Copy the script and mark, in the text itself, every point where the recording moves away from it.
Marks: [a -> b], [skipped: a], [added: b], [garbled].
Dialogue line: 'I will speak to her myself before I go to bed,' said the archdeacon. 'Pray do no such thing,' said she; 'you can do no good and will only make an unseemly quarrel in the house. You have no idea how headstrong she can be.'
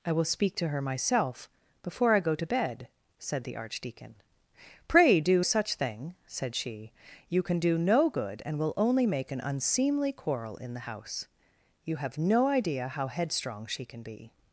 'I will speak to her myself before I go to bed,' said the archdeacon. 'Pray do [skipped: no] such thing,' said she; 'you can do no good and will only make an unseemly quarrel in the house. You have no idea how headstrong she can be.'